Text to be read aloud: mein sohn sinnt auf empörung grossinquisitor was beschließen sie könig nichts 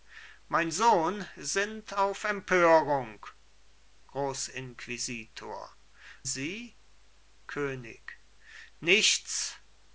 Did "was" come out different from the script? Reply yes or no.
yes